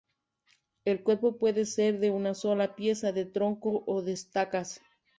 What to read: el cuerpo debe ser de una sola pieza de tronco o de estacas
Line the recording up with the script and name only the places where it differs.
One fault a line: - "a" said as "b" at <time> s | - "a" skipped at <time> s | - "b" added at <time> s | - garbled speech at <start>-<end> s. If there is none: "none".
- "debe" said as "puede" at 1.4 s